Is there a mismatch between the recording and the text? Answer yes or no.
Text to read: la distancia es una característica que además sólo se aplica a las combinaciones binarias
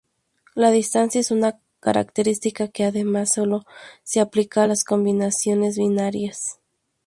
no